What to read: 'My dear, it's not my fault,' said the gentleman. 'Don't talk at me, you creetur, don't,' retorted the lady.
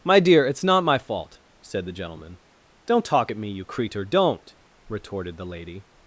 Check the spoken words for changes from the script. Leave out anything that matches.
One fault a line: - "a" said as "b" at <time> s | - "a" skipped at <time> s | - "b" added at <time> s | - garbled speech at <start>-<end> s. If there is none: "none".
none